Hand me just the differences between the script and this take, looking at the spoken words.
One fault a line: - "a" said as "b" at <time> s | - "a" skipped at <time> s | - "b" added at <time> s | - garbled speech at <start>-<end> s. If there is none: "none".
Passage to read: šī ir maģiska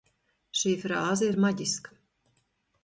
- "frāze" added at 0.8 s